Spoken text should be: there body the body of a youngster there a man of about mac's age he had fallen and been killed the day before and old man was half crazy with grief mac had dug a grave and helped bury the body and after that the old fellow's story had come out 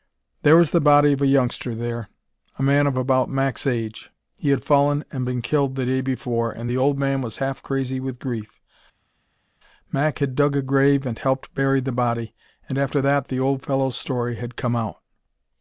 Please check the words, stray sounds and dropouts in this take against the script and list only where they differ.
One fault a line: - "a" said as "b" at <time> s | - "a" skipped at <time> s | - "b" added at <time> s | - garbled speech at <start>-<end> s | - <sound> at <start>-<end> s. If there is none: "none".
- "body" said as "was" at 0.6 s
- "the" added at 6.7 s